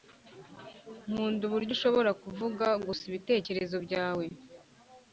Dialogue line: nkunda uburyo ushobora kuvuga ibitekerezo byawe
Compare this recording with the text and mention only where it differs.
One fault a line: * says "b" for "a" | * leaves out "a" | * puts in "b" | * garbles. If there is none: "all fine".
* puts in "gusa"